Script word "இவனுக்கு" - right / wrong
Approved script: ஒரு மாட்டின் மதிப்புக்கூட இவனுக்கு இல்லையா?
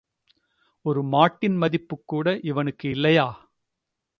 right